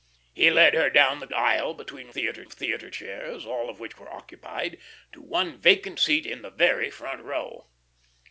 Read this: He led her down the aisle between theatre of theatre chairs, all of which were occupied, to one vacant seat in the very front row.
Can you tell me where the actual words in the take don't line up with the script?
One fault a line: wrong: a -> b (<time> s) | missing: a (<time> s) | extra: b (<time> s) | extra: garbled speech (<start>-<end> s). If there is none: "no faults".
no faults